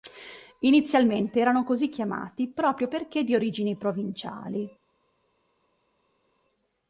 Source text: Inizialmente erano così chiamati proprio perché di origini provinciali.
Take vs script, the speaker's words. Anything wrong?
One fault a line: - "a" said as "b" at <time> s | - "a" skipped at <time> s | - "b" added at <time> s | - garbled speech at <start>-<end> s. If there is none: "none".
none